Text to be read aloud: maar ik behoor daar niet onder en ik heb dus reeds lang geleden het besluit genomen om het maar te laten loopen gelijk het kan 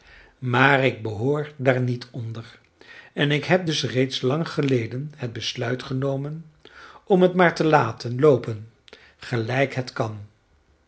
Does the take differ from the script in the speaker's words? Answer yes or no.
no